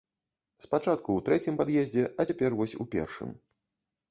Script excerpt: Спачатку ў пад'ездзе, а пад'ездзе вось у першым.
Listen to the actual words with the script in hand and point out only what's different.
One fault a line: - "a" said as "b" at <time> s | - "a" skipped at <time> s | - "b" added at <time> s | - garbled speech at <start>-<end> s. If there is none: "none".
- "трэцім" added at 1.3 s
- "пад'ездзе" said as "цяпер" at 2.3 s